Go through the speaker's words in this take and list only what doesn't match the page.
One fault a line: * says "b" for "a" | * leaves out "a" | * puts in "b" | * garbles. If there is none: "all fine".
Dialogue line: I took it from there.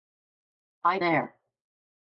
* leaves out "took it from"